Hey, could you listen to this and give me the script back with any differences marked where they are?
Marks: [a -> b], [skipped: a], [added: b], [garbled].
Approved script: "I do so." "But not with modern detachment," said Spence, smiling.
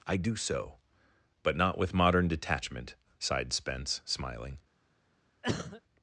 "I do so." "But not with modern detachment," [said -> sighed] Spence, smiling.